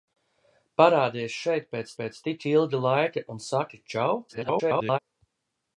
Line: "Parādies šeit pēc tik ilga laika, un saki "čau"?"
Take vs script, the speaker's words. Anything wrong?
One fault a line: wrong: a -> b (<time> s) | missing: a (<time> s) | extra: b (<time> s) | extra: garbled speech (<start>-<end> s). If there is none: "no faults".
extra: pēc (2.0 s)
extra: garbled speech (4.3-5.0 s)